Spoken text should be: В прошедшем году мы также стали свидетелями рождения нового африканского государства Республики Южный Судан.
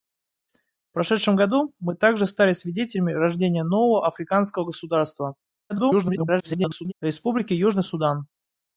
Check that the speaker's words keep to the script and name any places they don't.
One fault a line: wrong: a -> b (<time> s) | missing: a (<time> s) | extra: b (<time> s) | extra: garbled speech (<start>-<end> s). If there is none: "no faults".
extra: garbled speech (5.7-6.9 s)